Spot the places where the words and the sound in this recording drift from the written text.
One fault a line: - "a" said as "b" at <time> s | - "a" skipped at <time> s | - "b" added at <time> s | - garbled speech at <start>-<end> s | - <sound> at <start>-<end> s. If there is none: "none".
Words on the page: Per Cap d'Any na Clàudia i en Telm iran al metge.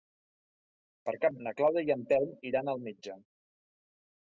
- "d'Any" skipped at 1.4 s